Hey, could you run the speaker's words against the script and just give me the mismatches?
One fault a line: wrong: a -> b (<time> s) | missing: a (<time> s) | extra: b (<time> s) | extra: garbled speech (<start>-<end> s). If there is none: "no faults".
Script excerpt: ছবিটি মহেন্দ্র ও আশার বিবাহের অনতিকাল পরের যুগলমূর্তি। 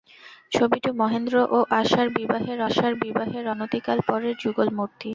extra: আশার বিবাহের (2.6 s)